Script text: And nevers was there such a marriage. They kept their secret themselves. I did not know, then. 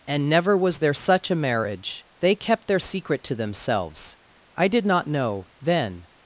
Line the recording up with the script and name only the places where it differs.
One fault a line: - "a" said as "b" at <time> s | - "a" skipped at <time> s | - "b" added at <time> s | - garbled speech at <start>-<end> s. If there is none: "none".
- "nevers" said as "never" at 0.3 s
- "to" added at 3.2 s